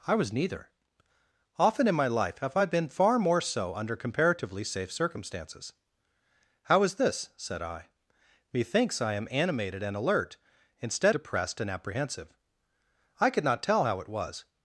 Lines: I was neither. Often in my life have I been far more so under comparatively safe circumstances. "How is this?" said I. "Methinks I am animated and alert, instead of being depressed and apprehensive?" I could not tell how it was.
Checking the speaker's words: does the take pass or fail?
fail